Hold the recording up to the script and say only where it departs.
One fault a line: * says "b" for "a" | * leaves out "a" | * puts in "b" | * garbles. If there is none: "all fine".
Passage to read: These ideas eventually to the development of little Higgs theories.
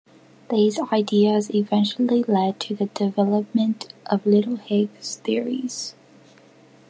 * puts in "led"